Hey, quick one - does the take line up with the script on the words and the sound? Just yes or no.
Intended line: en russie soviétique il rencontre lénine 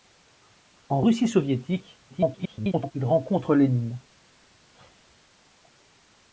no